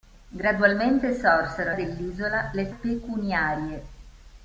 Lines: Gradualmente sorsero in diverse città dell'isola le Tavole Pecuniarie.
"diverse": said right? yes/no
no